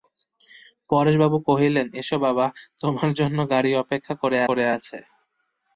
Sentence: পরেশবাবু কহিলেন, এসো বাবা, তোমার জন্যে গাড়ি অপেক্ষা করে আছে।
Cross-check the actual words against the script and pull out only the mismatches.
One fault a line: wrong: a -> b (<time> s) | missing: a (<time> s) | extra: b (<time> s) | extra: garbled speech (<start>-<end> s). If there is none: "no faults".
extra: করে (4.5 s)